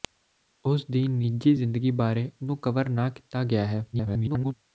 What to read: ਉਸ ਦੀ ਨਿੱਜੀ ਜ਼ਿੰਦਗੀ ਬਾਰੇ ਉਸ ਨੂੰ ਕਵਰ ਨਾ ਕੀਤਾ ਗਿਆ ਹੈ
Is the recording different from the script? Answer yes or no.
yes